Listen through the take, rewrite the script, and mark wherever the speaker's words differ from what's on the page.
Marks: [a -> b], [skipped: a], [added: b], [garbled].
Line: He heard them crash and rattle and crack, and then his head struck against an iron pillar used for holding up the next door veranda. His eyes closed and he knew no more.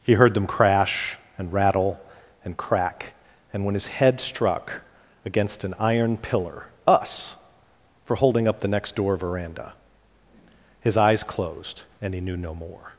He heard them crash and rattle and crack, and [then -> when] his head struck against an iron pillar [used -> us] for holding up the next door veranda. His eyes closed and he knew no more.